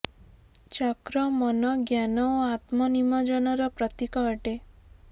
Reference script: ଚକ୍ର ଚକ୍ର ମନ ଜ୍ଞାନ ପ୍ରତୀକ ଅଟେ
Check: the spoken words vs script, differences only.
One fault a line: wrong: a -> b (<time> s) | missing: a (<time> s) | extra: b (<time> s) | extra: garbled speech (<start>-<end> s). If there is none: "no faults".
missing: ଚକ୍ର (1.2 s)
extra: ଓ ଆତ୍ମ ନିମଜ୍ଜନର (2.3 s)